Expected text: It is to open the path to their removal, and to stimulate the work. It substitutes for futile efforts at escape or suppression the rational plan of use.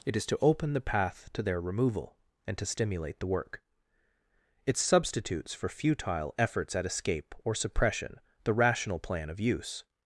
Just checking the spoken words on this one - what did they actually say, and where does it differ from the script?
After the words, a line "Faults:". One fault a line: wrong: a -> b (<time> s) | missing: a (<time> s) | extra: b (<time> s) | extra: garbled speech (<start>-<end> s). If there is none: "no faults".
It is to open the path to their removal, and to stimulate the work. It substitutes for futile efforts at escape or suppression the rational plan of use.
Faults:
no faults